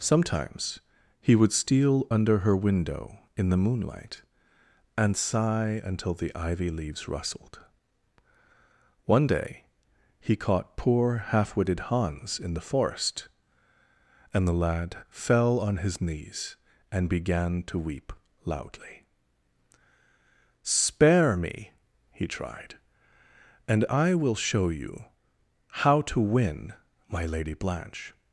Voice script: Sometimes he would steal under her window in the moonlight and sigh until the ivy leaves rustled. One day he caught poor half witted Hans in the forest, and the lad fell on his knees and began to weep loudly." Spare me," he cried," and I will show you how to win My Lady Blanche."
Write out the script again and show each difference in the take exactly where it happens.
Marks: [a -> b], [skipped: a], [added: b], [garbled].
Sometimes he would steal under her window in the moonlight and sigh until the ivy leaves rustled. One day he caught poor half witted Hans in the forest, and the lad fell on his knees and began to weep loudly." Spare me," he [cried," -> tried] and I will show you how to win My Lady Blanche."